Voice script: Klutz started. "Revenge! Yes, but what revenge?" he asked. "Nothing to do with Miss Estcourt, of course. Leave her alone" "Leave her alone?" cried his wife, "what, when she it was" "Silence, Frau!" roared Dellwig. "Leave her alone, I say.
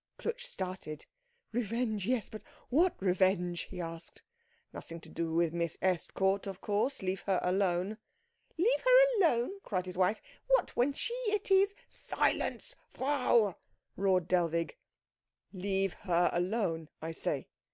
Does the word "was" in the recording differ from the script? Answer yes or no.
yes